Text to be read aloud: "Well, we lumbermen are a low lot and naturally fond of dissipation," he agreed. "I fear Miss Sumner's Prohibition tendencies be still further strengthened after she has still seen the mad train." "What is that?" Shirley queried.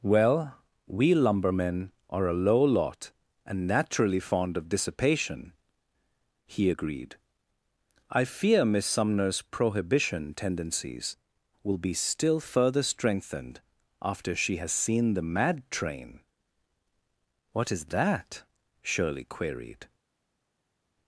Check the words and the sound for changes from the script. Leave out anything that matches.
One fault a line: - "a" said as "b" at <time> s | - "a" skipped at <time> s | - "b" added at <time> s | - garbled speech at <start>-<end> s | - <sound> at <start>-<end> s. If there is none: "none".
- "will" added at 11.6 s
- "still" skipped at 14.7 s